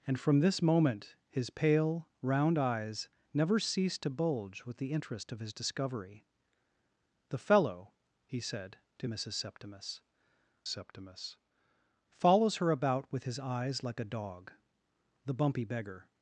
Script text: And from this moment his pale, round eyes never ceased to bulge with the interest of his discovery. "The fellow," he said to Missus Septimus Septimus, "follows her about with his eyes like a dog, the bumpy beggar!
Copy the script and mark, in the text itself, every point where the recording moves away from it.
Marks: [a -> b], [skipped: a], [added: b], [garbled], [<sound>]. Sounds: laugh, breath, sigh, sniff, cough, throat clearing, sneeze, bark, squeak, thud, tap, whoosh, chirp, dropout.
And from this moment his pale, round eyes never ceased to bulge with the interest of his discovery. "The fellow," he said to Missus Septimus Septimus, "follows her about with his eyes like a dog, the bumpy beggar!